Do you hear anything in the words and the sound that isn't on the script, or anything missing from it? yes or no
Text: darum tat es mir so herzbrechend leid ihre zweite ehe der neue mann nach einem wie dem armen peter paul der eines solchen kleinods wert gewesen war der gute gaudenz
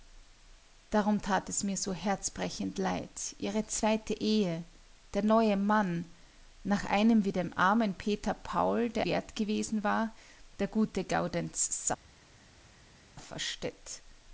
yes